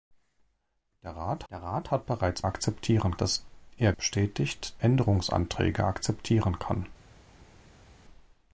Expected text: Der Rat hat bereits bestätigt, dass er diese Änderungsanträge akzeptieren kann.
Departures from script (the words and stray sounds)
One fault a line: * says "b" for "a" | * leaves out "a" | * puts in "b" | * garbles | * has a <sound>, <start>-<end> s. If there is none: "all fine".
* puts in "der Rat"
* says "akzeptieren" for "bestätigt"
* says "bestätigt" for "diese"